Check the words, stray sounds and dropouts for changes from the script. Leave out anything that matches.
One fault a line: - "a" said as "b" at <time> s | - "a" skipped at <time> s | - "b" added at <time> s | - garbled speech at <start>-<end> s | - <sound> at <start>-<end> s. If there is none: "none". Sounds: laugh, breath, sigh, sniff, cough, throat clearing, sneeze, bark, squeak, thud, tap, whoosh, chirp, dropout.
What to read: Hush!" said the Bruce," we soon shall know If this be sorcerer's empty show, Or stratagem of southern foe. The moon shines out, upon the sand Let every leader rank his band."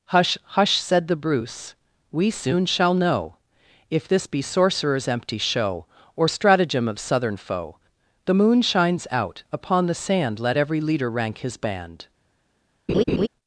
- "hush" added at 0.4 s
- laugh at 12.9-13.3 s